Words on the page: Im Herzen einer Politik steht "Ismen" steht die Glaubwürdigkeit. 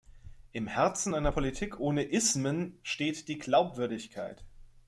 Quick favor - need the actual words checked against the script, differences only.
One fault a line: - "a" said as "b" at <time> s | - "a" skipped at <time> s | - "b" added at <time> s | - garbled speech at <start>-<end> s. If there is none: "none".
- "steht" said as "ohne" at 1.8 s